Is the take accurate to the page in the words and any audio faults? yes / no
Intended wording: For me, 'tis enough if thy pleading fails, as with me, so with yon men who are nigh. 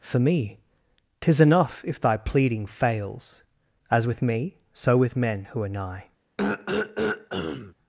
no